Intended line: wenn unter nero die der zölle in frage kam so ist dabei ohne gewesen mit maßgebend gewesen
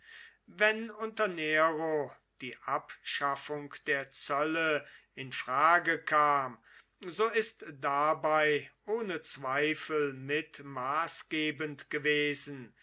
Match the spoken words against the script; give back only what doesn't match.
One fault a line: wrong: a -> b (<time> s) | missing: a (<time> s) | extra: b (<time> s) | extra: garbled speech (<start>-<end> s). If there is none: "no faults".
extra: abschaffung (2.6 s)
wrong: gewesen -> zweifel (9.2 s)